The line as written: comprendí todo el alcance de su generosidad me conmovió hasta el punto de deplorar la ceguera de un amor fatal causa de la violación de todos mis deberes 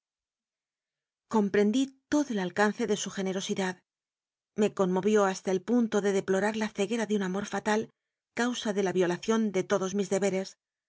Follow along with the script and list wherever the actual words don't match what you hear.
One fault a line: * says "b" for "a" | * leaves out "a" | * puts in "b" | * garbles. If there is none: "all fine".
all fine